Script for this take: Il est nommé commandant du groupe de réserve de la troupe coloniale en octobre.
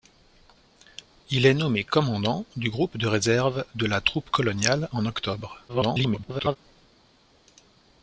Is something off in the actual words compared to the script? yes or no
yes